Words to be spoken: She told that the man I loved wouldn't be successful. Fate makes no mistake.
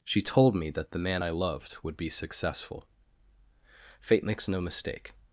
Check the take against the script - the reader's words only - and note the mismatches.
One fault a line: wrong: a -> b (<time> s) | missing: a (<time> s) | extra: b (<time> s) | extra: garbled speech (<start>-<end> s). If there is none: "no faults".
extra: me (0.6 s)
wrong: wouldn't -> would (1.8 s)